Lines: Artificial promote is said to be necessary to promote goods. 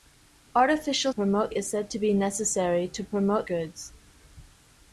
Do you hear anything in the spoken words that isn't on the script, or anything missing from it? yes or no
no